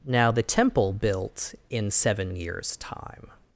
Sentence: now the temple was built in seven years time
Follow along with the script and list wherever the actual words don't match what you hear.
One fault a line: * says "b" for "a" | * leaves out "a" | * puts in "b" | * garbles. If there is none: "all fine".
* leaves out "was"